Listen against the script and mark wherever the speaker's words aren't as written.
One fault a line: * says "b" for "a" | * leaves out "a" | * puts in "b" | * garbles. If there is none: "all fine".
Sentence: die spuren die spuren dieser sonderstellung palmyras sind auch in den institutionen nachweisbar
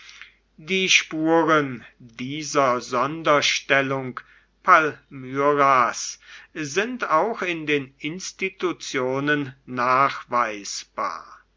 * leaves out "die spuren"